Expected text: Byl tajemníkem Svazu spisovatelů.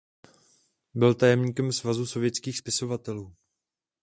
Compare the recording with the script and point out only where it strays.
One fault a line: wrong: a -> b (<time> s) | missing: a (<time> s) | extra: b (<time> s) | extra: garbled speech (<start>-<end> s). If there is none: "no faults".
extra: sovětských (2.0 s)